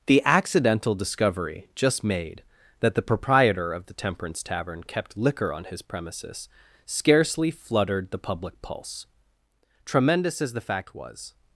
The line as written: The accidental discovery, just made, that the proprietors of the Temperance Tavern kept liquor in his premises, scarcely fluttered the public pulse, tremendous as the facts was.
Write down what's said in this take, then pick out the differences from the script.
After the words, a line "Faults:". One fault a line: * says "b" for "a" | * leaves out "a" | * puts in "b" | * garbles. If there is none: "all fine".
The accidental discovery, just made, that the proprietor of the Temperance Tavern kept liquor on his premises, scarcely fluttered the public pulse, tremendous as the fact was.
Faults:
* says "proprietor" for "proprietors"
* says "on" for "in"
* says "fact" for "facts"